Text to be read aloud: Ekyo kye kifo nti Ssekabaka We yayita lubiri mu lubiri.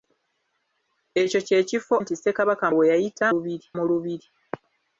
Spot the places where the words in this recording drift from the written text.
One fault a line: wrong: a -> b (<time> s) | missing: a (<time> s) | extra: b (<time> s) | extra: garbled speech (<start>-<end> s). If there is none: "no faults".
no faults